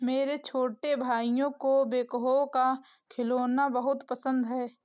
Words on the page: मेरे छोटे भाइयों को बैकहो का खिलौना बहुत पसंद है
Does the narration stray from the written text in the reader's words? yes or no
no